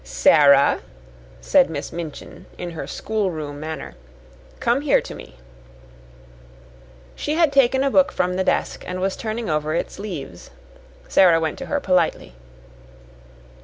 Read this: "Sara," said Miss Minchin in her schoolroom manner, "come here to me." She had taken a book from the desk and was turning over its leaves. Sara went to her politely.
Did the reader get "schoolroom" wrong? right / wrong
right